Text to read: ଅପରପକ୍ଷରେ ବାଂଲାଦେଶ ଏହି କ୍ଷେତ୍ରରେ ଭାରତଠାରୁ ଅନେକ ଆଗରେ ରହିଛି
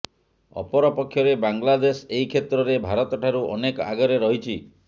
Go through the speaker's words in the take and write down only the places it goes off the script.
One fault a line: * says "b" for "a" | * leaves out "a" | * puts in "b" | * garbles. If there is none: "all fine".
all fine